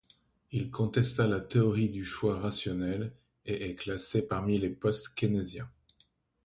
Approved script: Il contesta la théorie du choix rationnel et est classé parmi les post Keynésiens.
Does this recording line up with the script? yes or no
yes